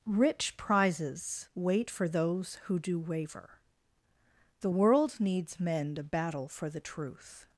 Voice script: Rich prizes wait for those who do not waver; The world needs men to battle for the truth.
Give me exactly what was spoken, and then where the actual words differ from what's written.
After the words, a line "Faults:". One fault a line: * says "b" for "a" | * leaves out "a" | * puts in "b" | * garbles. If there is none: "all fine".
Rich prizes wait for those who do waver; The world needs men to battle for the truth.
Faults:
* leaves out "not"